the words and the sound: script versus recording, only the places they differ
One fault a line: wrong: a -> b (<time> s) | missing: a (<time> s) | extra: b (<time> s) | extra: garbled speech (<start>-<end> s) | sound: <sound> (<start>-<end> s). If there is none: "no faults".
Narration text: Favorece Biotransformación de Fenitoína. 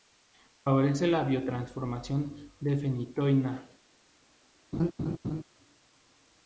extra: la (1.1 s)
sound: laugh (4.7-5.4 s)